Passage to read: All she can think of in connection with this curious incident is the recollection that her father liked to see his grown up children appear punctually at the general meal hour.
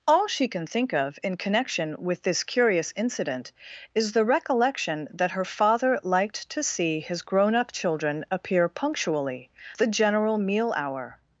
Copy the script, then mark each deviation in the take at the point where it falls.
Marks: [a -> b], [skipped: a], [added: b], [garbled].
All she can think of in connection with this curious incident is the recollection that her father liked to see his grown up children appear punctually [skipped: at] the general meal hour.